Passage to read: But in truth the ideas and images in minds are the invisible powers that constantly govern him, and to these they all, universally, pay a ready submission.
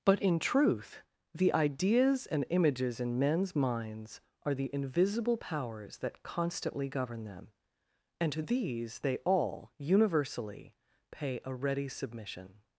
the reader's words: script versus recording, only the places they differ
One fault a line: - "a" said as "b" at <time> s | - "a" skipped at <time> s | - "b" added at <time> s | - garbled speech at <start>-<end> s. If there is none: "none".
- "men's" added at 3.2 s
- "him" said as "them" at 7.2 s